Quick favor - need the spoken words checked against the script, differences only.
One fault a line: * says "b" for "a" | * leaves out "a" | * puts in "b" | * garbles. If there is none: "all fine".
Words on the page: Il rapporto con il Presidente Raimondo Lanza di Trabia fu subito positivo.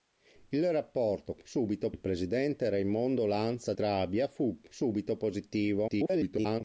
* says "subito" for "con"
* leaves out "di"
* garbles